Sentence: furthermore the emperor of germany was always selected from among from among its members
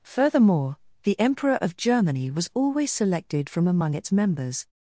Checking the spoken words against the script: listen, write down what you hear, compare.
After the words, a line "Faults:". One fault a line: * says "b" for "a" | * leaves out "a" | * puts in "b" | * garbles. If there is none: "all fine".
furthermore the emperor of germany was always selected from among its members
Faults:
* leaves out "from among"